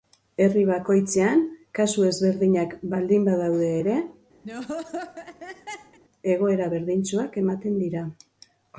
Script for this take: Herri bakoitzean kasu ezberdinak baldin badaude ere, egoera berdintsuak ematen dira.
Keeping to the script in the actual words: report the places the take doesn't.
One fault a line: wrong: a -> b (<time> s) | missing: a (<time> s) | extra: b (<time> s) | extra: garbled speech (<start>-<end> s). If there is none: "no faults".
no faults